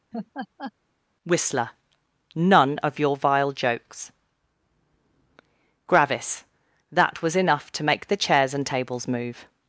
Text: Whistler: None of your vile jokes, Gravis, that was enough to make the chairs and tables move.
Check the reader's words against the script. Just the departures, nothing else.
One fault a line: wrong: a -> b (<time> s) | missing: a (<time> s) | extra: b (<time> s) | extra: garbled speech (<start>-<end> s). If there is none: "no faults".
no faults